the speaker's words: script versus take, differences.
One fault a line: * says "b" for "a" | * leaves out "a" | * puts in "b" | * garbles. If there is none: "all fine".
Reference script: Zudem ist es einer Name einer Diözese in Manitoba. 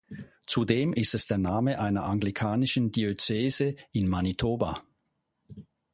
* says "der" for "einer"
* puts in "anglikanischen"